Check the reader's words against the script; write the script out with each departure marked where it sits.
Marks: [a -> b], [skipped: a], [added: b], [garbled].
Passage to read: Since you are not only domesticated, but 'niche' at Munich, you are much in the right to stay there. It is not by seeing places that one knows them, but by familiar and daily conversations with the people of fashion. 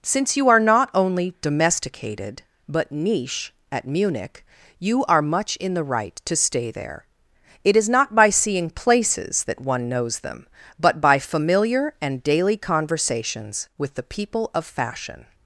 Since you are not only domesticated, but 'niche' at Munich, you are much in the right to stay there. It is not by seeing places that one knows them, but by familiar and daily conversations with the people of fashion.